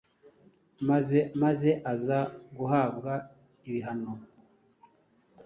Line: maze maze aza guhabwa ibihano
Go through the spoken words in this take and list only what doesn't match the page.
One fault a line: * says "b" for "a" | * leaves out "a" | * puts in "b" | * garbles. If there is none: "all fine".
all fine